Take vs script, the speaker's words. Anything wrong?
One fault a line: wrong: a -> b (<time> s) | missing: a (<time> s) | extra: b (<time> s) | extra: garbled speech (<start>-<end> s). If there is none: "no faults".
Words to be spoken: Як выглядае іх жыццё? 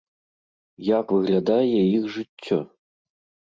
no faults